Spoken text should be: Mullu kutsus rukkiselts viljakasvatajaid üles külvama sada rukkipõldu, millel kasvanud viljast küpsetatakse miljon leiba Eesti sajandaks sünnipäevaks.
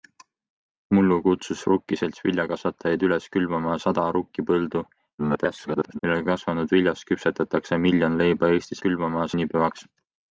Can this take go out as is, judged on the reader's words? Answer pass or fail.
fail